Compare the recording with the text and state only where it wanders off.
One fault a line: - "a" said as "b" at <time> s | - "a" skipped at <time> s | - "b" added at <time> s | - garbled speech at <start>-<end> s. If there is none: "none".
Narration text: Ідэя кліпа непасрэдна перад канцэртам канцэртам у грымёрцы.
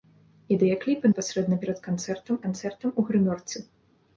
none